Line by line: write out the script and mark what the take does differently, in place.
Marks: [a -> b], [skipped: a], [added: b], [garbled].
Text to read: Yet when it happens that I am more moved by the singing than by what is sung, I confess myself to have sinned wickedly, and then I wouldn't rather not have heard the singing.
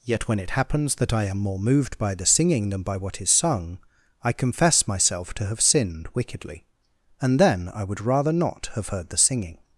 Yet when it happens that I am more moved by the singing than by what is sung, I confess myself to have sinned wickedly, and then I [wouldn't -> would] rather not have heard the singing.